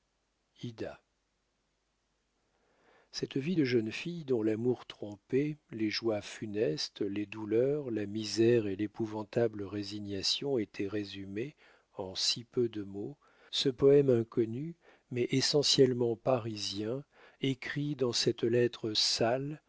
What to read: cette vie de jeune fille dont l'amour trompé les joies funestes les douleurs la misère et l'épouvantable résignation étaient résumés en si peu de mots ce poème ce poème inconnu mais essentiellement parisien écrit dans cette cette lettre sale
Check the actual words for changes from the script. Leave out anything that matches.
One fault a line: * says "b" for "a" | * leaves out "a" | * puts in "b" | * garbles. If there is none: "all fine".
* leaves out "ce poème"
* leaves out "cette"